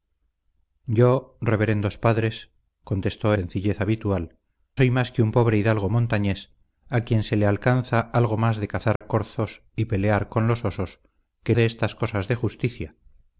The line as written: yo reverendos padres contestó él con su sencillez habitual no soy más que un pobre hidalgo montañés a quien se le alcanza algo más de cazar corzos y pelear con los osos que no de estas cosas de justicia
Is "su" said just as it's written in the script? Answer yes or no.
no